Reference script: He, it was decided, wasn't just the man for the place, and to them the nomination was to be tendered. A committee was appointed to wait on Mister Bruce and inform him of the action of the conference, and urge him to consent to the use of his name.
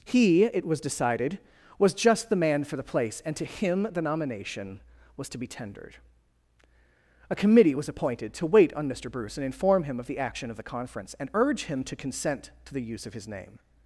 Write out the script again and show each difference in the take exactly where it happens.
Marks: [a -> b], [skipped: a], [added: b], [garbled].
He, it was decided, [wasn't -> was] just the man for the place, and to [them -> him] the nomination was to be tendered. A committee was appointed to wait on Mister Bruce and inform him of the action of the conference, and urge him to consent to the use of his name.